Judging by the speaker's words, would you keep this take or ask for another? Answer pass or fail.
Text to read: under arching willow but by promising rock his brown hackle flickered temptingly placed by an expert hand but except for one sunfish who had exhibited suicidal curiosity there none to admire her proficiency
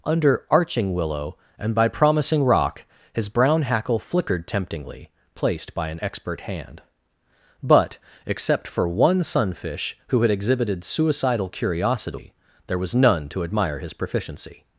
fail